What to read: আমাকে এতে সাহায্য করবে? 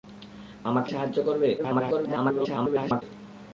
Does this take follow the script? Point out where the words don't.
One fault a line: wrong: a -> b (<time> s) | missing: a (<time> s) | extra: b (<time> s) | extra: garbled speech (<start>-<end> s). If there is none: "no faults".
missing: এতে (0.9 s)
extra: garbled speech (1.6-3.0 s)